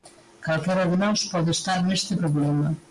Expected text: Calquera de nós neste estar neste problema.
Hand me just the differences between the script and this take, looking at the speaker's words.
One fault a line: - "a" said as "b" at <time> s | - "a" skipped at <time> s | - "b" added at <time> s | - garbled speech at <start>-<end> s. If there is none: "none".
- "neste" said as "pode" at 1.2 s